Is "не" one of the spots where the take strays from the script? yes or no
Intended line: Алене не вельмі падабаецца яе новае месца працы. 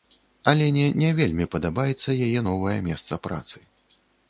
no